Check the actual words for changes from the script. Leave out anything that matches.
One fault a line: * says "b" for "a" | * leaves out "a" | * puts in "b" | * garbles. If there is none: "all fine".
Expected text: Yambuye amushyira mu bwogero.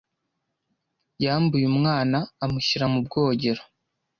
* puts in "umwana"